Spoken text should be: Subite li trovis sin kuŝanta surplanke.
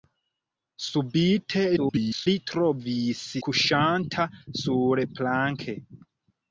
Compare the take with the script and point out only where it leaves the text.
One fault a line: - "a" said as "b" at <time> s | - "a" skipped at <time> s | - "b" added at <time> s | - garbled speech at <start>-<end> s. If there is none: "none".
- garbled speech at 1.8-2.3 s
- "sin" skipped at 3.2 s